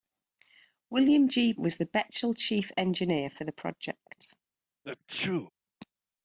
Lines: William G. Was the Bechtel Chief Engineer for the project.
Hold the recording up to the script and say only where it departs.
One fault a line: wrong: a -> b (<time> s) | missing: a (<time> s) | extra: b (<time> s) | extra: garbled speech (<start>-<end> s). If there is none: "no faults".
no faults